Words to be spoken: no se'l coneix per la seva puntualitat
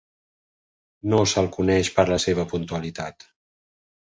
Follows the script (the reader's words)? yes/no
yes